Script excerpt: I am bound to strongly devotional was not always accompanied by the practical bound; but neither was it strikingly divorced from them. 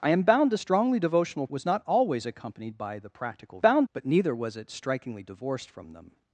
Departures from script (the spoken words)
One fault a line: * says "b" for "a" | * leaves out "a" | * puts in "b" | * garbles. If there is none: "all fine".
all fine